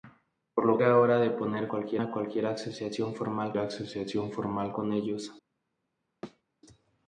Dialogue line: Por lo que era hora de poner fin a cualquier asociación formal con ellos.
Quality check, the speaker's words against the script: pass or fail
fail